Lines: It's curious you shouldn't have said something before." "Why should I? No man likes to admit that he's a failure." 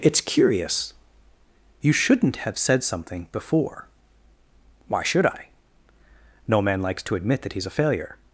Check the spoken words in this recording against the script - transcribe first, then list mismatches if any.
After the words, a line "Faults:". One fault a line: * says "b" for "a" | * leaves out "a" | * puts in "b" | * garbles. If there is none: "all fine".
It's curious you shouldn't have said something before." "Why should I? No man likes to admit that he's a failure."
Faults:
all fine